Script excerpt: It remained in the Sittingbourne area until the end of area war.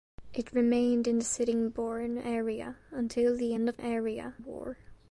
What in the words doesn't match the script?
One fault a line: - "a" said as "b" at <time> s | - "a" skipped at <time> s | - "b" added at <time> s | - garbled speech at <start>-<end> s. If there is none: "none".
none